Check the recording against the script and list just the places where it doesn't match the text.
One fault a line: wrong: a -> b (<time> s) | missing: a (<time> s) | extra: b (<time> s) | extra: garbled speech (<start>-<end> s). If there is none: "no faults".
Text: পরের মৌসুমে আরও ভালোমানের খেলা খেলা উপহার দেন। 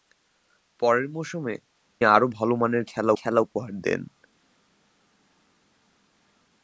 no faults